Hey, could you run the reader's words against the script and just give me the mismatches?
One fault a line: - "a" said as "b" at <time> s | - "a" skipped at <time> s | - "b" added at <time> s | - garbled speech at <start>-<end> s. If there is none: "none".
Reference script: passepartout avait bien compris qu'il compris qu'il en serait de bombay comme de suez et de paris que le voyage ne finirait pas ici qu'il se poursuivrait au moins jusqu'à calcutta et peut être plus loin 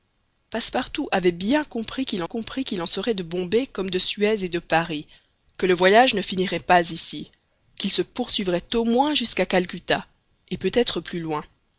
none